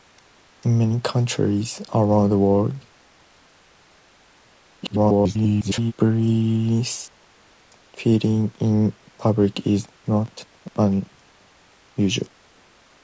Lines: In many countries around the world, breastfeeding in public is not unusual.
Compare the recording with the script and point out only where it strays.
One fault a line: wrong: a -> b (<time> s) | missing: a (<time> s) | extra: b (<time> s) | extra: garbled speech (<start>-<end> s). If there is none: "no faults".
extra: garbled speech (4.8-5.9 s)